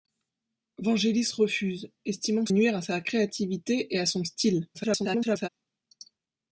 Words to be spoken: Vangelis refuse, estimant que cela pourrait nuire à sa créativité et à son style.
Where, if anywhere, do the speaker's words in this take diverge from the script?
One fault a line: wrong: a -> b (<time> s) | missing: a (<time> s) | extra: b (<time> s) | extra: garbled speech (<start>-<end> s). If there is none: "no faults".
missing: cela pourrait (2.5 s)
extra: garbled speech (4.7-5.5 s)